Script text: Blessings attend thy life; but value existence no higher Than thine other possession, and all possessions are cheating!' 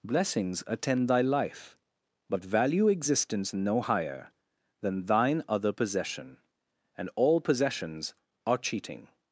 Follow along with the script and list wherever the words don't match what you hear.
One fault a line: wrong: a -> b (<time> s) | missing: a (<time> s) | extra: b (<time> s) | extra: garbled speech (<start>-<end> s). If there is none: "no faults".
no faults